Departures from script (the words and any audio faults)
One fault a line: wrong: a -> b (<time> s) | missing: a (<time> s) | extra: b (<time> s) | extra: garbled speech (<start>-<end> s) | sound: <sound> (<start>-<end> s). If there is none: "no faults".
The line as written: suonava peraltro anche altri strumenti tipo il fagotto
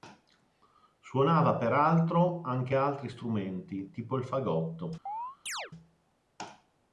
sound: chirp (5.1-5.7 s)